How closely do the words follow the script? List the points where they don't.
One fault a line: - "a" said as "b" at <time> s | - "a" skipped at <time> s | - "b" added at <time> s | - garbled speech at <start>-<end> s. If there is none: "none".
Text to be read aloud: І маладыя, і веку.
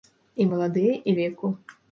none